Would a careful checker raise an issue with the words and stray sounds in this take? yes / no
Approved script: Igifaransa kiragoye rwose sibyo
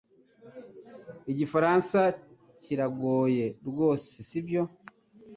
no